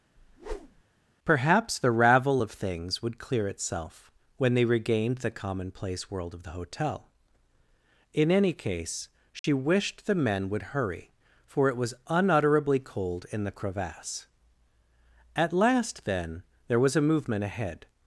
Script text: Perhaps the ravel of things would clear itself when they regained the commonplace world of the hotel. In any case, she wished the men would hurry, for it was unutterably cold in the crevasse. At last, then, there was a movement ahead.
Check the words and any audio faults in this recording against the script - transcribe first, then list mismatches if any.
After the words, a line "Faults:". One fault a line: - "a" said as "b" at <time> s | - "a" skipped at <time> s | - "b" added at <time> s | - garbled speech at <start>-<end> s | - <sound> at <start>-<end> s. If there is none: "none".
Perhaps the ravel of things would clear itself when they regained the commonplace world of the hotel. In any case, she wished the men would hurry, for it was unutterably cold in the crevasse. At last, then, there was a movement ahead.
Faults:
- whoosh at 0.2-0.8 s
- dropout at 9.4-9.4 s